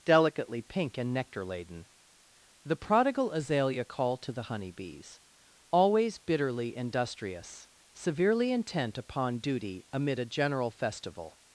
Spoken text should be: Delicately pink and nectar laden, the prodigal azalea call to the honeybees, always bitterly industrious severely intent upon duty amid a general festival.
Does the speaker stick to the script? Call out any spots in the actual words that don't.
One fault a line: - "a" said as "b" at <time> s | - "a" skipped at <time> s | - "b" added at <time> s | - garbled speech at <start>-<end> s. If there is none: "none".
none